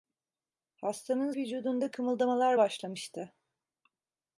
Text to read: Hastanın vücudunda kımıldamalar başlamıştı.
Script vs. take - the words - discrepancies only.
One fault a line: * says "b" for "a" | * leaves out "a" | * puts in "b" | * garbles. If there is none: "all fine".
all fine